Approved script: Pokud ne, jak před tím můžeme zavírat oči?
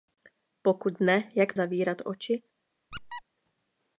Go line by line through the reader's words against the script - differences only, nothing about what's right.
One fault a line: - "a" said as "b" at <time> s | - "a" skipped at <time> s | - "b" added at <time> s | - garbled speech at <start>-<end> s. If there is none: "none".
- "před tím můžeme" skipped at 1.6 s